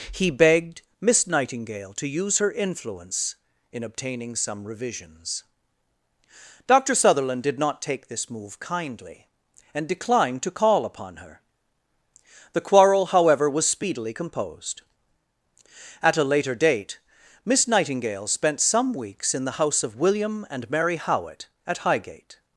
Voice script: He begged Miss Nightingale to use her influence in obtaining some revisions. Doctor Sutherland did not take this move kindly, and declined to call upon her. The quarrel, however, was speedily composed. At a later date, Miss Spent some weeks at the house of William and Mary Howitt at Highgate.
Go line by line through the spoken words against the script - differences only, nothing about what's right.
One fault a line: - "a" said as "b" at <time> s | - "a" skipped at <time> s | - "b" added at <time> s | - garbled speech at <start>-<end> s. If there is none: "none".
- "Nightingale" added at 17.7 s
- "at" said as "in" at 19.3 s